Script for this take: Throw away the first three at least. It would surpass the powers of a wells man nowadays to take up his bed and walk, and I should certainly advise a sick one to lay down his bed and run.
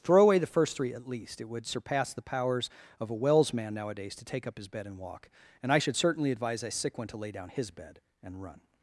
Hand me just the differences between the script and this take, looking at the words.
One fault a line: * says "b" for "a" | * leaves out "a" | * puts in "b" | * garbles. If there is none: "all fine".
all fine